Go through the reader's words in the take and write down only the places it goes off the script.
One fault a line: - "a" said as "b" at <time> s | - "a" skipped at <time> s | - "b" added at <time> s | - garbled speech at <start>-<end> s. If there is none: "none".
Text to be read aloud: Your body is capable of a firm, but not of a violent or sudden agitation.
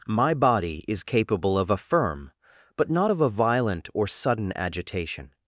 - "Your" said as "My" at 0.1 s